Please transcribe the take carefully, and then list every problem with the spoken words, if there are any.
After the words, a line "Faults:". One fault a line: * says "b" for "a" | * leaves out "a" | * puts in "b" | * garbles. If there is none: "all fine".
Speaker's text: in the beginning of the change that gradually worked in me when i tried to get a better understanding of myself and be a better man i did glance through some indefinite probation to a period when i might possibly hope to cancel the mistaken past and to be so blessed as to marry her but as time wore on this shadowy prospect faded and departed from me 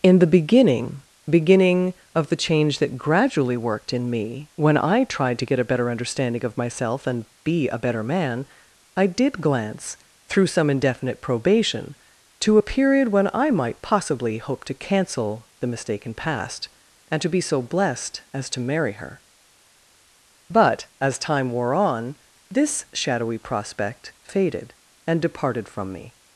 in the beginning beginning of the change that gradually worked in me when i tried to get a better understanding of myself and be a better man i did glance through some indefinite probation to a period when i might possibly hope to cancel the mistaken past and to be so blessed as to marry her but as time wore on this shadowy prospect faded and departed from me
Faults:
* puts in "beginning"